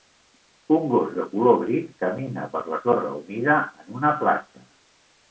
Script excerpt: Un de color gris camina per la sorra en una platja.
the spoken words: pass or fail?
fail